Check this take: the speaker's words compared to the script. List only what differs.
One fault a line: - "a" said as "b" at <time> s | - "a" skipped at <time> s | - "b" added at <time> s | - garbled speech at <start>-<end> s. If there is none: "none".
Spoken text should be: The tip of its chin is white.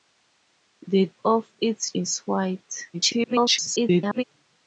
- "tip" skipped at 1.1 s
- "chin" skipped at 1.9 s
- garbled speech at 2.9-4.2 s